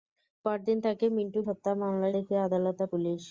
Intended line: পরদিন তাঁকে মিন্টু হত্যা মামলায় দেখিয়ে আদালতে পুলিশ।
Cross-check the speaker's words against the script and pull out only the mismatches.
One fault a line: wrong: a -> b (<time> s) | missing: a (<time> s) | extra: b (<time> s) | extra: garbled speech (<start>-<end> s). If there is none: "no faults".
no faults